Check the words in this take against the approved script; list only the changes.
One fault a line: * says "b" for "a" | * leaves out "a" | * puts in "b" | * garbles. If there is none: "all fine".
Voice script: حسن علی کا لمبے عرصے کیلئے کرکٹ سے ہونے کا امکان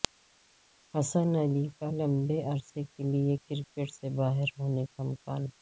* puts in "باہر"